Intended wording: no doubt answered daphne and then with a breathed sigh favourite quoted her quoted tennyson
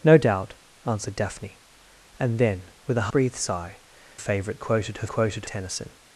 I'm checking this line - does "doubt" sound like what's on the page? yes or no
yes